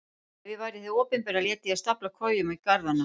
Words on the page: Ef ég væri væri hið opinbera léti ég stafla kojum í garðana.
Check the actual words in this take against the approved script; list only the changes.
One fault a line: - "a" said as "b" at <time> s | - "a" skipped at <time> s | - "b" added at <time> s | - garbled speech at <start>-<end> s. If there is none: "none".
- "væri" skipped at 0.8 s